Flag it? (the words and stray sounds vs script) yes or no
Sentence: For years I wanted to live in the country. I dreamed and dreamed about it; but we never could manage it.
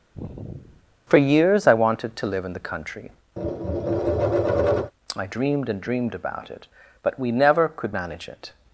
yes